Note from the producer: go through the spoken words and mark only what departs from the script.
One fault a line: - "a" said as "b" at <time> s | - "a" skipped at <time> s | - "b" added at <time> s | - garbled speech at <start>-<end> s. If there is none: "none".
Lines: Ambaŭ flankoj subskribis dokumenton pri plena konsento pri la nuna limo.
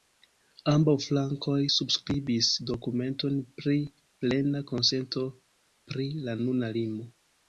none